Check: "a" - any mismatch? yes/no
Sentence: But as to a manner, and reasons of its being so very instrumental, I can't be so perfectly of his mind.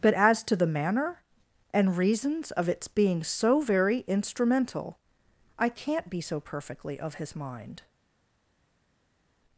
yes